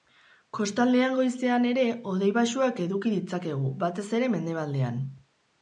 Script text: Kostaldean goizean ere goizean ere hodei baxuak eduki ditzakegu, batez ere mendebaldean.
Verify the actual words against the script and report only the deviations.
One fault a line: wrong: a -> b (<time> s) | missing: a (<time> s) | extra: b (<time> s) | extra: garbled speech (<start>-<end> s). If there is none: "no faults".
missing: goizean ere (1.8 s)